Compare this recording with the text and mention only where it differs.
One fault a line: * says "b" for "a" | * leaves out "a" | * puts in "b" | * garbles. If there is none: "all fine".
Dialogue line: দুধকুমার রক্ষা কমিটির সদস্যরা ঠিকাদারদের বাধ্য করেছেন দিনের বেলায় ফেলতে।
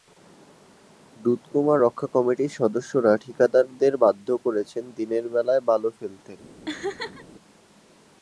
* puts in "বালু"